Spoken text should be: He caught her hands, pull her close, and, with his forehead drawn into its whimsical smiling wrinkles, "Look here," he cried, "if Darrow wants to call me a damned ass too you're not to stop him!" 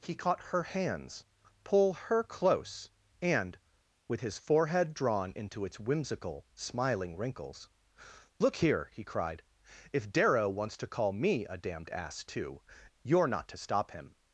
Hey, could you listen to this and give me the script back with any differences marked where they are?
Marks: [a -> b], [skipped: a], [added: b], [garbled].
He caught her hands, pull her close, and, with his forehead drawn into its whimsical smiling wrinkles, "Look here," he cried, "if Darrow wants to call me a damned ass too you're not to stop him!"